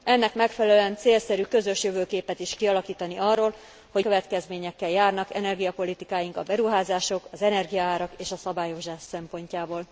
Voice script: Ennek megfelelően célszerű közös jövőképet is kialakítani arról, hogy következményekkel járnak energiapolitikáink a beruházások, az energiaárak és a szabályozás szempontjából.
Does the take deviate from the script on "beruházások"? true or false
false